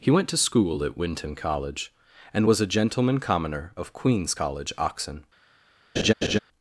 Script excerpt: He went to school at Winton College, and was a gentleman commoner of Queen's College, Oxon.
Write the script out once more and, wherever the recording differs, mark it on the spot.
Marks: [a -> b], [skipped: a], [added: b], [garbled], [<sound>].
He went to school at Winton College, and was a gentleman commoner of Queen's College, Oxon. [laugh]